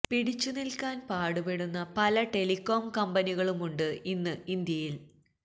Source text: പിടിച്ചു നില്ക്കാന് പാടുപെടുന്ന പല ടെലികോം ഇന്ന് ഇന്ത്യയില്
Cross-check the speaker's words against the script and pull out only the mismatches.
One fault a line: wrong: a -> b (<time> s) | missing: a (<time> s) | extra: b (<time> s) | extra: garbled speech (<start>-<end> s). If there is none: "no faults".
extra: കമ്പനികളുമുണ്ട് (3.0 s)